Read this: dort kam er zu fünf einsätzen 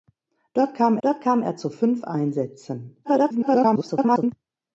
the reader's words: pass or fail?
fail